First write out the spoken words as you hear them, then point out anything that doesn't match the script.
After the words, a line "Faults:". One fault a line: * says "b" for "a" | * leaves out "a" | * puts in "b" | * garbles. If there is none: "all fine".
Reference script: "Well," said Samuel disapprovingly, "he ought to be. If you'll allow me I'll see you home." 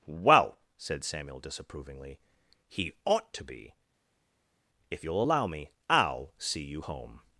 "Well," said Samuel disapprovingly, "he ought to be. If you'll allow me I'll see you home."
Faults:
all fine